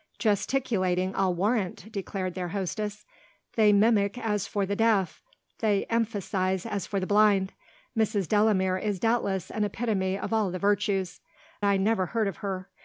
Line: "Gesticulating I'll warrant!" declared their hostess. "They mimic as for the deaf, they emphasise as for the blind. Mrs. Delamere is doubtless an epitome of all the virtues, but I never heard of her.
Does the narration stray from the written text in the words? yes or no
yes